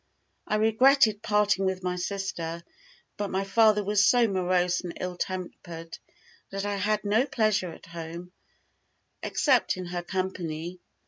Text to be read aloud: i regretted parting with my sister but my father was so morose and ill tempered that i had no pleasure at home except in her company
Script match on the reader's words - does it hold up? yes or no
yes